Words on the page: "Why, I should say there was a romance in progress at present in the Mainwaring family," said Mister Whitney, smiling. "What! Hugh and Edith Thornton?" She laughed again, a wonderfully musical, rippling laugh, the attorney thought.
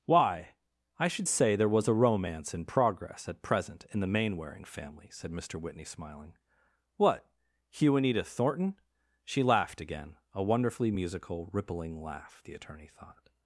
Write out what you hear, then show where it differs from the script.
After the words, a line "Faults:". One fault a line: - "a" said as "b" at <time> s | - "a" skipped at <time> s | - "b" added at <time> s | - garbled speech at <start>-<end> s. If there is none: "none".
"Why, I should say there was a romance in progress at present in the Mainwaring family," said Mister Whitney, smiling. "What! Hugh and Edith Thornton?" She laughed again, a wonderfully musical, rippling laugh, the attorney thought.
Faults:
none